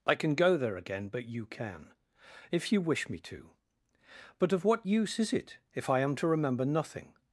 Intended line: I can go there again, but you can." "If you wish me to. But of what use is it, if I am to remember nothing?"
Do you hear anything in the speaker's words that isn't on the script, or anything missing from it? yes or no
no